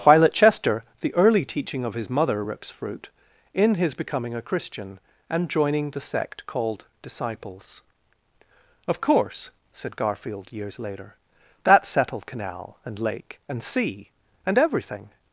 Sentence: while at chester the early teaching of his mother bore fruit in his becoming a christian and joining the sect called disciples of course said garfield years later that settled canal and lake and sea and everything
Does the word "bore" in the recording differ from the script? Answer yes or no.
yes